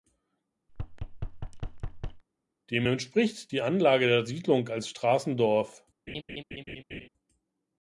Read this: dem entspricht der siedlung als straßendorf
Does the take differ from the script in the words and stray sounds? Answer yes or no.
yes